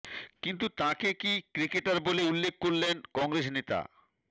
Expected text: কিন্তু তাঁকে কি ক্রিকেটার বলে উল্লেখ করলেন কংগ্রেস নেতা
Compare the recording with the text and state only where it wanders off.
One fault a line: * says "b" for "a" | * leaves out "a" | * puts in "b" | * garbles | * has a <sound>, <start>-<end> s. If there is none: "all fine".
all fine